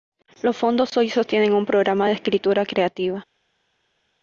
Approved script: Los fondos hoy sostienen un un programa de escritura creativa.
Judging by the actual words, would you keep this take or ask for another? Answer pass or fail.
fail